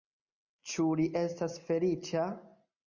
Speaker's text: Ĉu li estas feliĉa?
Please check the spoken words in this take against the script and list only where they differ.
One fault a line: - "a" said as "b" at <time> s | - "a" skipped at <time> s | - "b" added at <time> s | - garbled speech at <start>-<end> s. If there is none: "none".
none